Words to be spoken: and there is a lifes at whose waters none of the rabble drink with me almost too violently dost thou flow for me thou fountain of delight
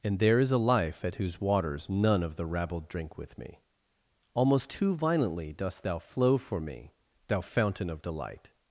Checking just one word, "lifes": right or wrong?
wrong